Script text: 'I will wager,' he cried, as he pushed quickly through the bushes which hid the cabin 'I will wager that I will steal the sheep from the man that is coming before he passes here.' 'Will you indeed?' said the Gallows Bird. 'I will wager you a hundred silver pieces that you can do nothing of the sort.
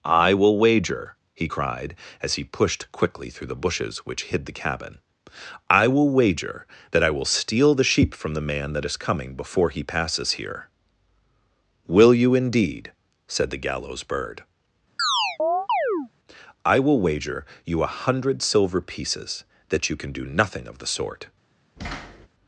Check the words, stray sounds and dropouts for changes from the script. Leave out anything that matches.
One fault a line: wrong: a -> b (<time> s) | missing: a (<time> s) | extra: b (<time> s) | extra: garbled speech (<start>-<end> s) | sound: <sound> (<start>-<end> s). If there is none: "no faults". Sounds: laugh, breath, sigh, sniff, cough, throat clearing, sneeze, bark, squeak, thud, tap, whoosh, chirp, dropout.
sound: chirp (15.0-16.1 s)
sound: thud (21.8-22.3 s)